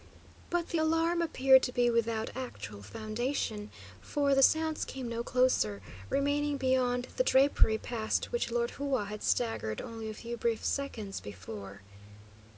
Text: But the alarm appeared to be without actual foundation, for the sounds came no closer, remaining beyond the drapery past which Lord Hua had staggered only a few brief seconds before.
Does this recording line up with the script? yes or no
yes